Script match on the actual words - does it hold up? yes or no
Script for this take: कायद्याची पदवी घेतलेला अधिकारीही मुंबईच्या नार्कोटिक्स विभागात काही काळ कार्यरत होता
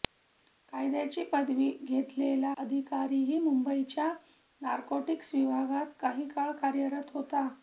yes